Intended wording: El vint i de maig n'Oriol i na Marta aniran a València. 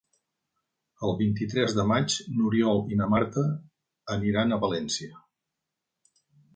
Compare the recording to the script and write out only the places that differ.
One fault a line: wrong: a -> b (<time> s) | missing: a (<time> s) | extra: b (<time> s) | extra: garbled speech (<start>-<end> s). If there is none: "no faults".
extra: tres (1.5 s)